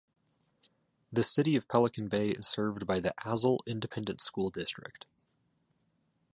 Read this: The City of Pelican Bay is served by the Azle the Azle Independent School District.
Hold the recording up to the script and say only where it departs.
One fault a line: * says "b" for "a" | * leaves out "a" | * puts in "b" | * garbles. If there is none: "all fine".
* leaves out "the Azle"